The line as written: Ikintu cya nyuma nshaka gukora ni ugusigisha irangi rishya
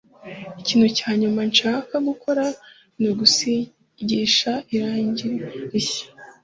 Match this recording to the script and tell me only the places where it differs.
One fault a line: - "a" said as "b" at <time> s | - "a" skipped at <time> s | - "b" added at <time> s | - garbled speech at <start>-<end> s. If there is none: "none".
none